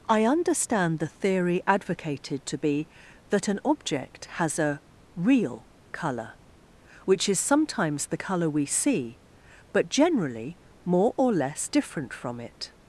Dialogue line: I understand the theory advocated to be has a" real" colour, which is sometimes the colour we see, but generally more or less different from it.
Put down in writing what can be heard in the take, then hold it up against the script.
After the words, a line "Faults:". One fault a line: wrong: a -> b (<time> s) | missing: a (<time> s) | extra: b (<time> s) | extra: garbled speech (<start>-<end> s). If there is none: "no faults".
I understand the theory advocated to be that an object has a" real" colour, which is sometimes the colour we see, but generally more or less different from it.
Faults:
extra: that an object (3.3 s)